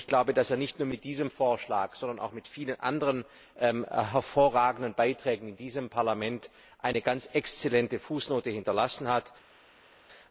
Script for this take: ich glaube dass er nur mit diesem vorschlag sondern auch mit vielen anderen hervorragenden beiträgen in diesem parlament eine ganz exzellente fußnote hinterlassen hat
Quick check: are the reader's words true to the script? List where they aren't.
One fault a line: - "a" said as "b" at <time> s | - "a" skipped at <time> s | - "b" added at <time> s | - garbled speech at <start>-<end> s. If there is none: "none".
- "nicht" added at 0.6 s